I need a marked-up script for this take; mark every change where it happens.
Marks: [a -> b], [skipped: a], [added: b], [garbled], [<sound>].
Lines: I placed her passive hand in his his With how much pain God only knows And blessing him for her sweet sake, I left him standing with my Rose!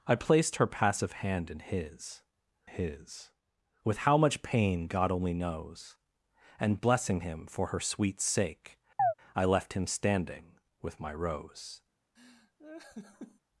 I placed her passive hand in his his With how much pain God only knows And blessing him for her sweet sake, [chirp] I left him standing with my Rose! [laugh]